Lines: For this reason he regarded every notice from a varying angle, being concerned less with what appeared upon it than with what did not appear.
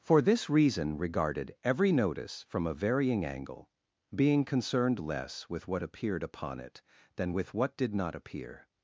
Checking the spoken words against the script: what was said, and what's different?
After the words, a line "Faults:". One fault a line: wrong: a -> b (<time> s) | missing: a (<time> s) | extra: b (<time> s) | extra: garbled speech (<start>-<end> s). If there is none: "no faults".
For this reason regarded every notice from a varying angle, being concerned less with what appeared upon it than with what did not appear.
Faults:
missing: he (1.0 s)